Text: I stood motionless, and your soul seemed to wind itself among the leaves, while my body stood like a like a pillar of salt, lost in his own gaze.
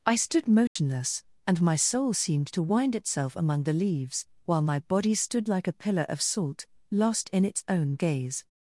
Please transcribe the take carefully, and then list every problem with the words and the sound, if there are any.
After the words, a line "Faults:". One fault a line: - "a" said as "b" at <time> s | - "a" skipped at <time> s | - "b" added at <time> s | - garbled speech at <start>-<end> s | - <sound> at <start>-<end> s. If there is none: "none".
I stood motionless, and my soul seemed to wind itself among the leaves, while my body stood like a pillar of salt, lost in its own gaze.
Faults:
- dropout at 0.7-0.8 s
- "your" said as "my" at 1.6 s
- "like a" skipped at 5.8 s
- "his" said as "its" at 7.4 s